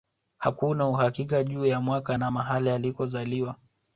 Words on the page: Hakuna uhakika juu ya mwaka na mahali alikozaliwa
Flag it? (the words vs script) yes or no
no